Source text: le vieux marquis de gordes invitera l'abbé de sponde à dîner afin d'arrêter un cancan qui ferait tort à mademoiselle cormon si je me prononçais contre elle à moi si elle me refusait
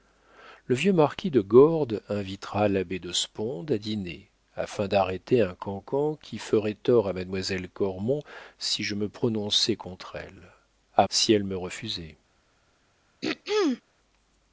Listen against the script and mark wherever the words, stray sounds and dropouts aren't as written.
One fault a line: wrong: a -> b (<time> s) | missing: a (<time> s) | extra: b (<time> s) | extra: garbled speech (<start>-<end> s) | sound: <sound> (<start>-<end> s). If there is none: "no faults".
missing: moi (11.1 s)
sound: throat clearing (13.2-13.8 s)